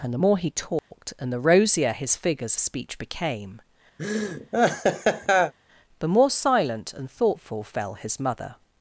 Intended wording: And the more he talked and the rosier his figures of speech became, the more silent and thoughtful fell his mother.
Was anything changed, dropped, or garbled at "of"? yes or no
yes